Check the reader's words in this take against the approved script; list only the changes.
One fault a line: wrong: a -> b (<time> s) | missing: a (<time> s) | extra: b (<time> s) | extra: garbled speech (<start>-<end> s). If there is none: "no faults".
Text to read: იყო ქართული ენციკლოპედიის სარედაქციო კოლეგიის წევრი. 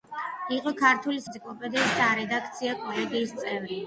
no faults